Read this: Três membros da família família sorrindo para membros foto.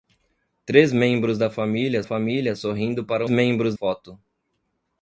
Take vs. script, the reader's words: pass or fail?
pass